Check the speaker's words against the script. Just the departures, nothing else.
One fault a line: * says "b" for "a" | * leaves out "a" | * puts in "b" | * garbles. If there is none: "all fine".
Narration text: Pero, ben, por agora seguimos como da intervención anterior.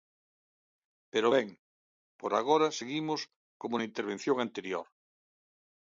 * says "na" for "da"